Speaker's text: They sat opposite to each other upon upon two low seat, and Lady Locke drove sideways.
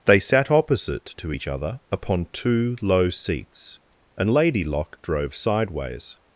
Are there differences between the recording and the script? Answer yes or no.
yes